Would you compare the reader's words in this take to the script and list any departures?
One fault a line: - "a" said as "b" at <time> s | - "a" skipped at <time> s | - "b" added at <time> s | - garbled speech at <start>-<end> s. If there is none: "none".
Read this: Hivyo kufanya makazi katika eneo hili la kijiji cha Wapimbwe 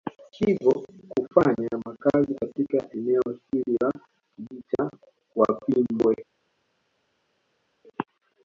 none